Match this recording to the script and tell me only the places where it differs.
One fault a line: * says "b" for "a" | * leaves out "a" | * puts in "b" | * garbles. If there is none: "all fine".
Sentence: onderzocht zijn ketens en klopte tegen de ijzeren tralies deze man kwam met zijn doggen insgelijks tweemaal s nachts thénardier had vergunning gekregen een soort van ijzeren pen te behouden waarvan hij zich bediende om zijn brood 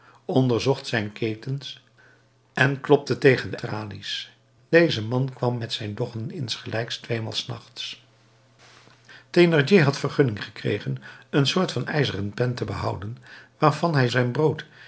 * leaves out "ijzeren"
* leaves out "zich bediende om"